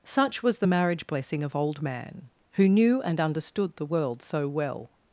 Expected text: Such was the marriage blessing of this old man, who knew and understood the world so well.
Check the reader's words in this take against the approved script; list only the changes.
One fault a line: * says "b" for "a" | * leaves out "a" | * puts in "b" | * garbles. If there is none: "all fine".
* leaves out "this"